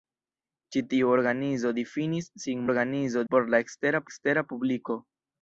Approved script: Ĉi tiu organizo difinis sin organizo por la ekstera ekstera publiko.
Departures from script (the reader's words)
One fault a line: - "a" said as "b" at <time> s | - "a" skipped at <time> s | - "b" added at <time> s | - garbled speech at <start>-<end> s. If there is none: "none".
none